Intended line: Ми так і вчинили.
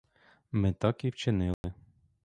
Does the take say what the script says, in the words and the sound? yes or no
no